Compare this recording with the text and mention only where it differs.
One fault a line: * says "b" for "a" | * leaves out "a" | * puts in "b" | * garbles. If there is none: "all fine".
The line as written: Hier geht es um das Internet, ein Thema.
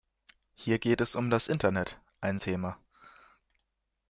all fine